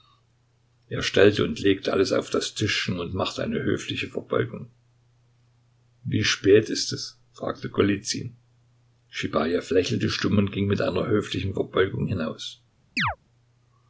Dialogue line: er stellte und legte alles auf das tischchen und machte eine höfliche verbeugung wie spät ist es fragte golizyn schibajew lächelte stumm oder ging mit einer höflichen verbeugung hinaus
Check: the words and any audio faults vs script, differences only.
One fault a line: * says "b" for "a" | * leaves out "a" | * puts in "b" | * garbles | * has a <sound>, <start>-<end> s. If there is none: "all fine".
* says "und" for "oder"
* has a chirp, 13.0-13.2 s